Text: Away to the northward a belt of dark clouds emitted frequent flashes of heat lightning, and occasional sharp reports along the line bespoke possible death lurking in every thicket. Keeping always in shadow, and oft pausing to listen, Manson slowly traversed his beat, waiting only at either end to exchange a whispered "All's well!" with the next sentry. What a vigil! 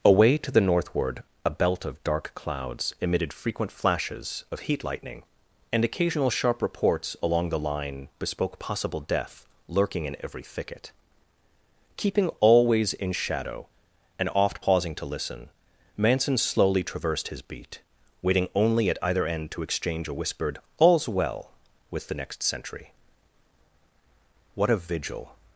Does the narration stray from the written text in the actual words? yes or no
no